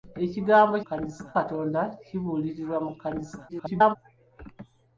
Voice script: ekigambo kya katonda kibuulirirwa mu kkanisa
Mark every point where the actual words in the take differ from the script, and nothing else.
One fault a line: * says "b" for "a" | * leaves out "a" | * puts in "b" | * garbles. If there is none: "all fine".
* says "kkanisa" for "kya"
* garbles